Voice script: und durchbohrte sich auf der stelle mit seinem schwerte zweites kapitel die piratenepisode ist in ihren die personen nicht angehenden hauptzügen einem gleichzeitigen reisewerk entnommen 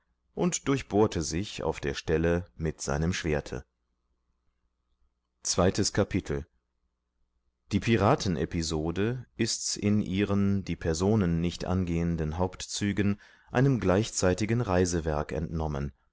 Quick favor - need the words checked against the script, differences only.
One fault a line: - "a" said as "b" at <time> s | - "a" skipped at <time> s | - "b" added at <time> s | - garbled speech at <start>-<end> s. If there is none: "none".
none